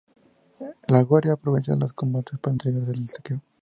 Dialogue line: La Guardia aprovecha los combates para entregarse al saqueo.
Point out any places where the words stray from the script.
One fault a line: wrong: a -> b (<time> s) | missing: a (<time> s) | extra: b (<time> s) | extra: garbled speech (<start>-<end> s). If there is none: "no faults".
no faults